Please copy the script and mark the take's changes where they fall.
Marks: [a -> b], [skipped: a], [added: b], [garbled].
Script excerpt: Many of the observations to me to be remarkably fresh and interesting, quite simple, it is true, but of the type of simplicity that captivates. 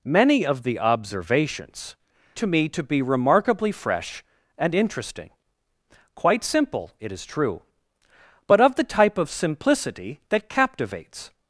Many of the observations to me to be remarkably fresh and interesting, quite simple, it is true, but of the type of simplicity that captivates.